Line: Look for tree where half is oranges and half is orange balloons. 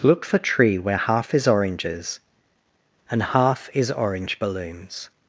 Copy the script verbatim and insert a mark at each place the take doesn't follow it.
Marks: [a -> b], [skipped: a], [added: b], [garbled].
Look for tree where half is oranges and half is orange balloons.